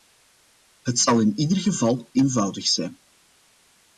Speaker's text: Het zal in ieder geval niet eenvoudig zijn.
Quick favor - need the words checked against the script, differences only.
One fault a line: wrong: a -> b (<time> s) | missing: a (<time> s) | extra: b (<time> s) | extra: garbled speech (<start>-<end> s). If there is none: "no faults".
missing: niet (2.1 s)